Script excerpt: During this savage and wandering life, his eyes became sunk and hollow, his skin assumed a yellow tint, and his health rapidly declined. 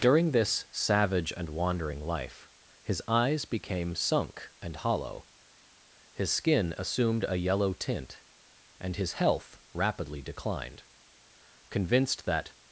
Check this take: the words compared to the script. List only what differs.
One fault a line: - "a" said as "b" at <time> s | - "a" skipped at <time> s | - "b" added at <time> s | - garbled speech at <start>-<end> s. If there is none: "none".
- "Convinced that" added at 11.7 s